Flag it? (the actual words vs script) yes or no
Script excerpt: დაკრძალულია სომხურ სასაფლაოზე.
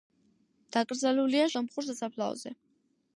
no